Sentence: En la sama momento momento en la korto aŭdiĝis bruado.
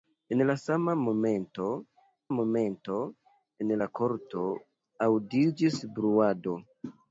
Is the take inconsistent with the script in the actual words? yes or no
no